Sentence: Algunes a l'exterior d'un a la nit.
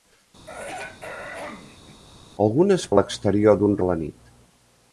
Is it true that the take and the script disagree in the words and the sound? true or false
true